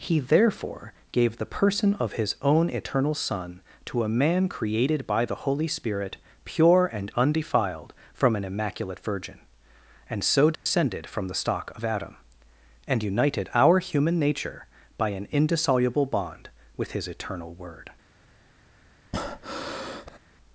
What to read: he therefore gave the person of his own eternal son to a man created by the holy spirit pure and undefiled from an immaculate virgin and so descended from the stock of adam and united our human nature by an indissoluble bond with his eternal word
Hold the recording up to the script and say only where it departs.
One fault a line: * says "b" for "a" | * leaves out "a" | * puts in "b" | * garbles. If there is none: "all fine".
all fine